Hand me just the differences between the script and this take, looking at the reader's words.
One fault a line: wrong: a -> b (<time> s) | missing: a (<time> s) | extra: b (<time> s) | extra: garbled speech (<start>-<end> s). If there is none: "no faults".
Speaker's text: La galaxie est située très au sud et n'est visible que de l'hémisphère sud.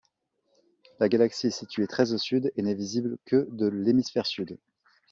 no faults